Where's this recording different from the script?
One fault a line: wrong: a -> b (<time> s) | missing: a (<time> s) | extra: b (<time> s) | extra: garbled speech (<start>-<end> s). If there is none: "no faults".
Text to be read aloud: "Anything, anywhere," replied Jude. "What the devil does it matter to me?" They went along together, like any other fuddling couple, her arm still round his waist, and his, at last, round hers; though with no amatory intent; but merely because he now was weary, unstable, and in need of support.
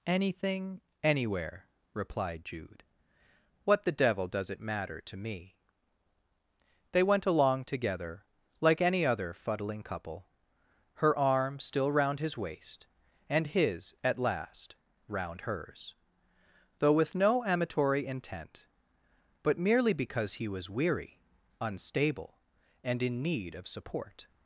missing: now (20.5 s)